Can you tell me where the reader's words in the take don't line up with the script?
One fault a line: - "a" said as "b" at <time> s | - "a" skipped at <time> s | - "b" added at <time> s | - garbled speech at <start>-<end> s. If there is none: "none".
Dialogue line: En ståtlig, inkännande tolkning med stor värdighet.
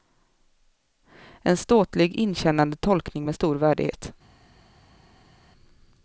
none